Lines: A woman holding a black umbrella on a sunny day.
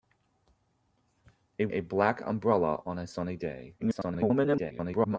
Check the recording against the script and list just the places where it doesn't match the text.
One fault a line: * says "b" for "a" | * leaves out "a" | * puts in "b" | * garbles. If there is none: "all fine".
* leaves out "woman holding"
* garbles